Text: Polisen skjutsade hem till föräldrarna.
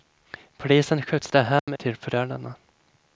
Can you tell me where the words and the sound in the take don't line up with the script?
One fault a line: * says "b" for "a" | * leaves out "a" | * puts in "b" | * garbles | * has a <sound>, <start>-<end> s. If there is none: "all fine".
* has a dropout, 1.6-1.7 s